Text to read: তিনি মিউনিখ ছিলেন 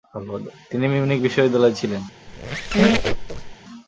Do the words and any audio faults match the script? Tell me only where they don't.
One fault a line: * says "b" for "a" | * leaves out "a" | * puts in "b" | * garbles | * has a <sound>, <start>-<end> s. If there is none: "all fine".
* puts in "বিশ্ববিদ্যালয়ে"
* has a squeak, 2.3-3.6 s